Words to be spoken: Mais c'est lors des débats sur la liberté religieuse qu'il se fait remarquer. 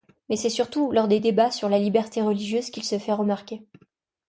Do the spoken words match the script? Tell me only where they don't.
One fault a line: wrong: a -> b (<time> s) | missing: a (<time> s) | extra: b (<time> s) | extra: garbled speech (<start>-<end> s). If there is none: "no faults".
extra: surtout (0.5 s)